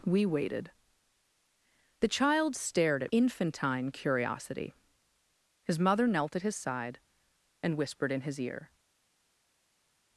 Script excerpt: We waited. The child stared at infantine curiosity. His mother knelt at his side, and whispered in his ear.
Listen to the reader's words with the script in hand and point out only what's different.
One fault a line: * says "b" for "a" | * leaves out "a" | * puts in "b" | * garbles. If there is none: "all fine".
all fine